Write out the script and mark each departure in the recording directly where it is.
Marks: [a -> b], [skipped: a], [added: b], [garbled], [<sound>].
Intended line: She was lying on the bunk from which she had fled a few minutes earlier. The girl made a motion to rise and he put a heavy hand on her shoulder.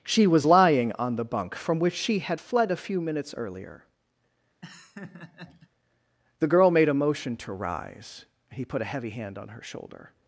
She was lying on the bunk from which she had fled a few minutes earlier. [laugh] The girl made a motion to rise [skipped: and] he put a heavy hand on her shoulder.